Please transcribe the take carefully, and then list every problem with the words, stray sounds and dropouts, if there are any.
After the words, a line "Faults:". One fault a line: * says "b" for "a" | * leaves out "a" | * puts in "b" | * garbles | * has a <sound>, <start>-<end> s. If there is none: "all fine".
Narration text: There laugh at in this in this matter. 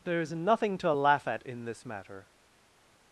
There is nothing to laugh at in this matter.
Faults:
* puts in "is nothing to"
* leaves out "in this"